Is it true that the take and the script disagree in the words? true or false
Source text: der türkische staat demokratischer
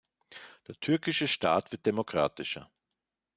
true